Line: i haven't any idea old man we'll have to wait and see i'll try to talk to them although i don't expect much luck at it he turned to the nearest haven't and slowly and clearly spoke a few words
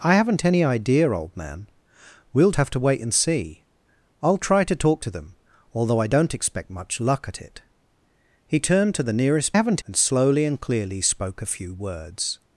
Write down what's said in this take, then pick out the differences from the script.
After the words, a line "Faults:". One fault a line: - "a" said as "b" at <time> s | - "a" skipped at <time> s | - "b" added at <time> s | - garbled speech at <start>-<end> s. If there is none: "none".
i haven't any idea old man we'll have to wait and see i'll try to talk to them although i don't expect much luck at it he turned to the nearest haven't and slowly and clearly spoke a few words
Faults:
none